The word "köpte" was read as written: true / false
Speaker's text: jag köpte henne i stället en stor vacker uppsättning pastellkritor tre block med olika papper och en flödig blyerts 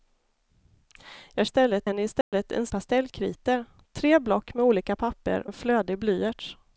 false